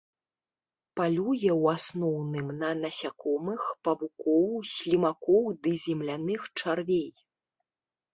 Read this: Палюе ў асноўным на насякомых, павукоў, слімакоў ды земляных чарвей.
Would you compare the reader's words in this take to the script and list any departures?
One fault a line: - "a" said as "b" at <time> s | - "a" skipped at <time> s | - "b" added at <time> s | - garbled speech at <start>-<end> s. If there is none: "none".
none